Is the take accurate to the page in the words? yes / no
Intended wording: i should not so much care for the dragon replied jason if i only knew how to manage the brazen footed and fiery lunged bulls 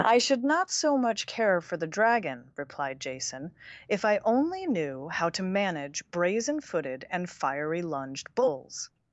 no